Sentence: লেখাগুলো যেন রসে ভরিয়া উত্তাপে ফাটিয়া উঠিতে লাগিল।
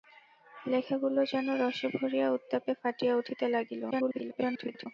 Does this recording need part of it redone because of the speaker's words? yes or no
yes